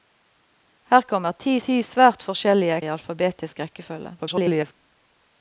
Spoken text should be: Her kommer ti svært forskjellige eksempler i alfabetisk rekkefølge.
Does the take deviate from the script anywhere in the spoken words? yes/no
yes